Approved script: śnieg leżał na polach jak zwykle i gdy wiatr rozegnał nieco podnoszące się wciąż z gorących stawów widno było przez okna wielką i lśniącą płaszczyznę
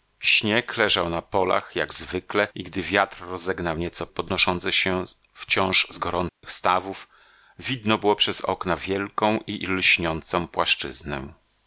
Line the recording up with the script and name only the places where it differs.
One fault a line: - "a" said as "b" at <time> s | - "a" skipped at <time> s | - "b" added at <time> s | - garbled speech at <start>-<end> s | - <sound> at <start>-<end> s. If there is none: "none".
- dropout at 6.3-6.4 s